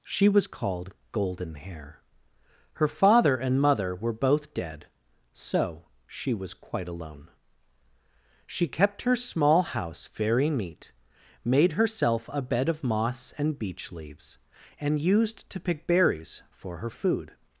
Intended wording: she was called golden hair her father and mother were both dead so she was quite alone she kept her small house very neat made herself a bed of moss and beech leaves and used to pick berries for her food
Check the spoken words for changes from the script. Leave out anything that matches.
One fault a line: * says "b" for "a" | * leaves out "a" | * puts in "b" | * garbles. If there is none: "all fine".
all fine